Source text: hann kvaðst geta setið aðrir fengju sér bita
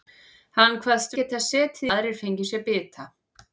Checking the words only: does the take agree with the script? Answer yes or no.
yes